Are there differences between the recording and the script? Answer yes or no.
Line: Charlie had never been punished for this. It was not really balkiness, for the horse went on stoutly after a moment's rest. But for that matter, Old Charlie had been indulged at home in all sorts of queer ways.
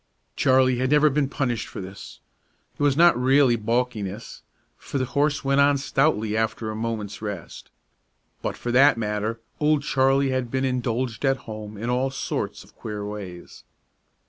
no